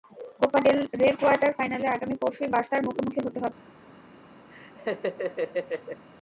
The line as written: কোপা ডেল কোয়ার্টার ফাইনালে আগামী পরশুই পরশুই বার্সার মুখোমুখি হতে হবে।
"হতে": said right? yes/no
yes